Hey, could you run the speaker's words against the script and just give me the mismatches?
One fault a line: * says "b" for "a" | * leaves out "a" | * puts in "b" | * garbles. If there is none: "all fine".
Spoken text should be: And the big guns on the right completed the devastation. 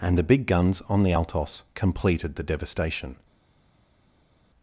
* says "altos" for "right"